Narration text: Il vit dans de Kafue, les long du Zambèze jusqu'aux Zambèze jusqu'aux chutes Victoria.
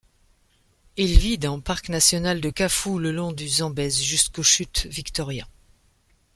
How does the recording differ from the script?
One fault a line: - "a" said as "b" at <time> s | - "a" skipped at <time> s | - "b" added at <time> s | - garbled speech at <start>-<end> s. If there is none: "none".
- "parc national" added at 1.6 s
- "les" said as "le" at 3.0 s
- "Zambèze jusqu'aux" skipped at 4.4 s